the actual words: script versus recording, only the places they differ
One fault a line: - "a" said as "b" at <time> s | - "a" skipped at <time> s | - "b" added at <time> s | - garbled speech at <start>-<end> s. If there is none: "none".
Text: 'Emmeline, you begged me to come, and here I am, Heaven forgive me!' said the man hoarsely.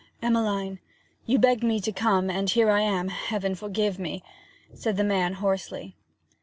none